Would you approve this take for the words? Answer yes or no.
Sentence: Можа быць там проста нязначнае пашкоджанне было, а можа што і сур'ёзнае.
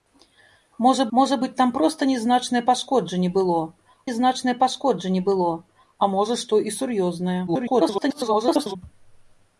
no